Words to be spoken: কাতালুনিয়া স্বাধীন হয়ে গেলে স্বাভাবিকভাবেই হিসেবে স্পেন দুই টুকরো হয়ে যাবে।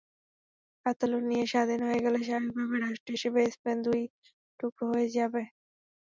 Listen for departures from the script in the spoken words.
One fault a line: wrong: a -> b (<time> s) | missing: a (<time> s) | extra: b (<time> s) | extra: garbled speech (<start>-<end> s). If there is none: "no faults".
extra: রাষ্ট্র (2.8 s)